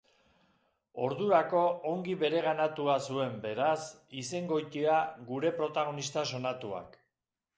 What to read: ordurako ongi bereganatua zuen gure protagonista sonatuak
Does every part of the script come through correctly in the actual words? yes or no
no